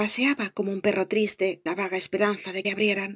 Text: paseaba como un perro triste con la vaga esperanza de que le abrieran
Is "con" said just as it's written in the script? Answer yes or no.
no